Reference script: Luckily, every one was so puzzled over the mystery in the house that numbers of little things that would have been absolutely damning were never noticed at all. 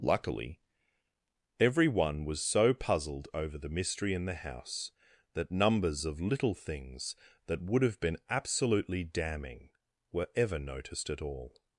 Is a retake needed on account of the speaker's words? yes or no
yes